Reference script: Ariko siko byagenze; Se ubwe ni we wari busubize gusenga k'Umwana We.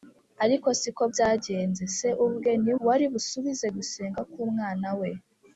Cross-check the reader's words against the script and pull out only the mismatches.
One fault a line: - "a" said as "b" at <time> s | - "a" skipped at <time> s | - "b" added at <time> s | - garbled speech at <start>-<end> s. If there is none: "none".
- "we" skipped at 2.7 s